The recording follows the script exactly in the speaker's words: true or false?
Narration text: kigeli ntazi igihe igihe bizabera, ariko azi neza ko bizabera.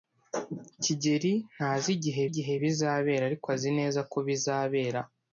true